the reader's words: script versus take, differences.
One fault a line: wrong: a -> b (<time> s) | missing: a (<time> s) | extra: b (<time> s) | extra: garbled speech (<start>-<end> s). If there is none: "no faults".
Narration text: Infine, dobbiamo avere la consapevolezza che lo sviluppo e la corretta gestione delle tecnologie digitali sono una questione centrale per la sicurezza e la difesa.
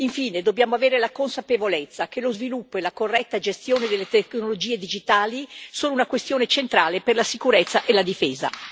no faults